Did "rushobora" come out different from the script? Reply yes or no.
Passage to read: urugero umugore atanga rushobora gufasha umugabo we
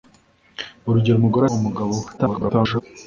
yes